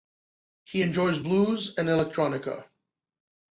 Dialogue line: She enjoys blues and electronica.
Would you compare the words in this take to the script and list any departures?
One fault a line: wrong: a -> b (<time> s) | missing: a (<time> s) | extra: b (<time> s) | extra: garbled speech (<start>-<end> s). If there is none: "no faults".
wrong: She -> He (0.7 s)